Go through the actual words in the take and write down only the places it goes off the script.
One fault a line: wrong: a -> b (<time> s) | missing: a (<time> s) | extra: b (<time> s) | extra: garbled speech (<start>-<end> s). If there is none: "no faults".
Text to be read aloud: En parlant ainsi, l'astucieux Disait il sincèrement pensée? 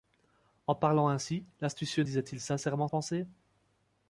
no faults